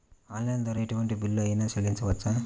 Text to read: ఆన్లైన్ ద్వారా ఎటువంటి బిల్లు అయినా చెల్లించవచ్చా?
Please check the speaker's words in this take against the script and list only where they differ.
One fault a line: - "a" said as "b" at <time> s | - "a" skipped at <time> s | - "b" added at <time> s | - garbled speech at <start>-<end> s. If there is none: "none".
none